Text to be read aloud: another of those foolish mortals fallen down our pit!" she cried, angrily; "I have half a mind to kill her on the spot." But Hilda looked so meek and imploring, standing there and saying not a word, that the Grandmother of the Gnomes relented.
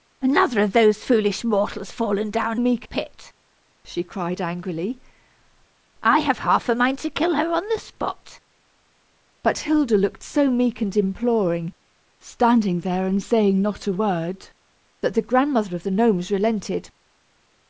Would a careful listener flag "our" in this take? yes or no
yes